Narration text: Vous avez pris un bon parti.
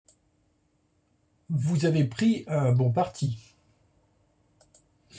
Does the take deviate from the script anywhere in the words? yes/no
no